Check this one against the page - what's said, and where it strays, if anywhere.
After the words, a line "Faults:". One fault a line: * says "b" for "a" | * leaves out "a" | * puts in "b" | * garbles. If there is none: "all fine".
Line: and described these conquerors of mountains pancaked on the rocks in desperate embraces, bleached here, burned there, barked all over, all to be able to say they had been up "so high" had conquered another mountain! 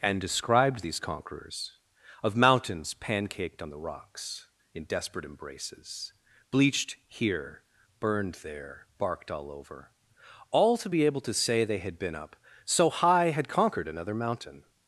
and described these conquerors of mountains pancaked on the rocks in desperate embraces, bleached here, burned there, barked all over, all to be able to say they had been up "so high" had conquered another mountain!
Faults:
all fine